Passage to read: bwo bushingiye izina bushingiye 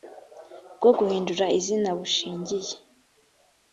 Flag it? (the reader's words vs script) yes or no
yes